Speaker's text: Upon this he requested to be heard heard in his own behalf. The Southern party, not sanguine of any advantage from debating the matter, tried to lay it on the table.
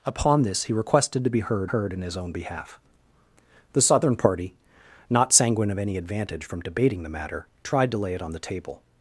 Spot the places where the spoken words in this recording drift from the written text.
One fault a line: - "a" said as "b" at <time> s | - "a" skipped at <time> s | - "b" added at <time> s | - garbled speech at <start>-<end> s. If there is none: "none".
none